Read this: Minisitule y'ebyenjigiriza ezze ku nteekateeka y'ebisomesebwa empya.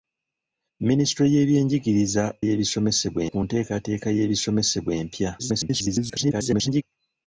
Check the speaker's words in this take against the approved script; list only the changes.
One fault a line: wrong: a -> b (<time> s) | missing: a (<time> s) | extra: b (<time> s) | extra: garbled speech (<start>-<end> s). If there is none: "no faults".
wrong: ezze -> y'ebisomesebwa (2.4 s)
extra: garbled speech (5.4-6.8 s)